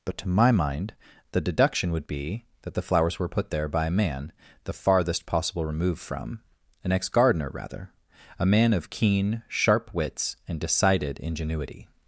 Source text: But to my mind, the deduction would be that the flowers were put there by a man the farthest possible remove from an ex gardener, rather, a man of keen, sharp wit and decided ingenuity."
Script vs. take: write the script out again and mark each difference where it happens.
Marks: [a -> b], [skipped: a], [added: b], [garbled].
But to my mind, the deduction would be that the flowers were put there by a man the farthest possible remove from an ex gardener, rather, a man of keen, sharp [wit -> wits] and decided ingenuity."